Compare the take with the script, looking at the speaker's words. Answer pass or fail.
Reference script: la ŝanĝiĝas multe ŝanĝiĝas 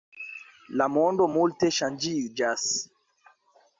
fail